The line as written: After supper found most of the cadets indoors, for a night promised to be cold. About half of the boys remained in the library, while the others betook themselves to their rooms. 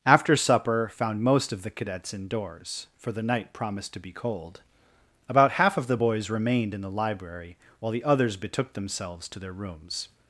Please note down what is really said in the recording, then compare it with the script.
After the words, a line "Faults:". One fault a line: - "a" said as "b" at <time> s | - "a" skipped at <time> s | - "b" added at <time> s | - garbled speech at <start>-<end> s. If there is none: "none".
After supper found most of the cadets indoors, for the night promised to be cold. About half of the boys remained in the library, while the others betook themselves to their rooms.
Faults:
- "a" said as "the" at 3.1 s